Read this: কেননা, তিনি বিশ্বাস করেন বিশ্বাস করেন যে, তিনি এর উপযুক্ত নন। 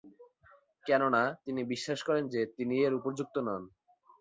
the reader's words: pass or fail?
fail